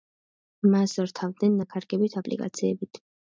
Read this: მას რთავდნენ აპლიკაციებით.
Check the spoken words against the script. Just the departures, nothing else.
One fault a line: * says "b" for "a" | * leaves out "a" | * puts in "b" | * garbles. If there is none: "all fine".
* puts in "ნაქარგებით"